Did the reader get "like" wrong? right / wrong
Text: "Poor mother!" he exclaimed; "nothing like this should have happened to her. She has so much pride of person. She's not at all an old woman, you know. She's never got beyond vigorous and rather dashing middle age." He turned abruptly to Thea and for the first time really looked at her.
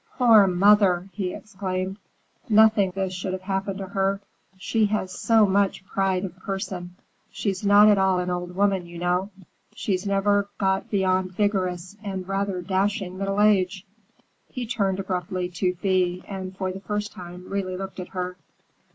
wrong